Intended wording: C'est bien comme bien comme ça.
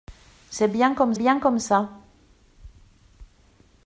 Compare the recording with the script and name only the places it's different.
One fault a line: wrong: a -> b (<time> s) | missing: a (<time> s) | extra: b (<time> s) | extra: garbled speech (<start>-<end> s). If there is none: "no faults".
no faults